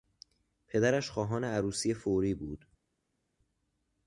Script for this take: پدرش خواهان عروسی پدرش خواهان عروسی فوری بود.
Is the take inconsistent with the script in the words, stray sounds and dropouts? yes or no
yes